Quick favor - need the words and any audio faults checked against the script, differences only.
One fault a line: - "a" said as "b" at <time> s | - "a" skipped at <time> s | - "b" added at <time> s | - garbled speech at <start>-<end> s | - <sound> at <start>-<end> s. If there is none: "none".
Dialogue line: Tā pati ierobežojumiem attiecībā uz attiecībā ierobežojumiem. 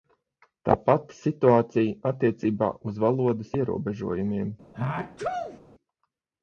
- "ierobežojumiem" said as "situācija" at 1.2 s
- "attiecībā" said as "valodas" at 3.0 s
- sneeze at 4.7-5.6 s